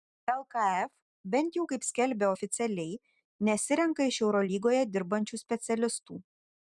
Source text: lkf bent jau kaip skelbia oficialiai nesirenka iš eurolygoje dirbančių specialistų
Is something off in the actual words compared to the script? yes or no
no